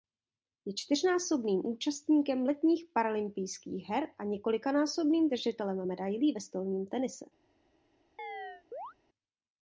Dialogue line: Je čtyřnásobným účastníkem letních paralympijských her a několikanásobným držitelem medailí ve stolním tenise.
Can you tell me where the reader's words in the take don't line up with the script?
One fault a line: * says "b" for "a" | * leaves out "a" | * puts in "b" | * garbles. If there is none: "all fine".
all fine